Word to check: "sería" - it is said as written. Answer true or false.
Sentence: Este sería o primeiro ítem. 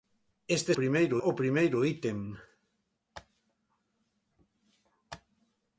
false